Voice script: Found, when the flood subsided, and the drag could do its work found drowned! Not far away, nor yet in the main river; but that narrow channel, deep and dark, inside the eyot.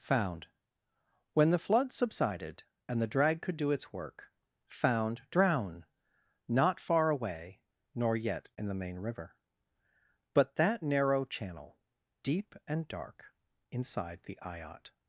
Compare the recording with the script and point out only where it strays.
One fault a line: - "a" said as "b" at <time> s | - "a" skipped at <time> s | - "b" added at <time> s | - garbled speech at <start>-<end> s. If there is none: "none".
- "drowned" said as "drown" at 5.3 s